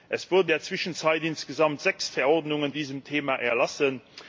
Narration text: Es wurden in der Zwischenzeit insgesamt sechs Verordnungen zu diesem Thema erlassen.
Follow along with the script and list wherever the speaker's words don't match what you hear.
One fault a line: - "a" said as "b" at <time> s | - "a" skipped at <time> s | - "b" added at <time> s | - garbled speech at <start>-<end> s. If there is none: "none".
- "in" skipped at 0.5 s
- "zu" skipped at 2.7 s